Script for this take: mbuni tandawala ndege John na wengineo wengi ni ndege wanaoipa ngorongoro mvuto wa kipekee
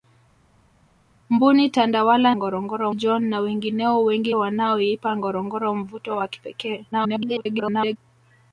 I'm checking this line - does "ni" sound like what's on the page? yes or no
no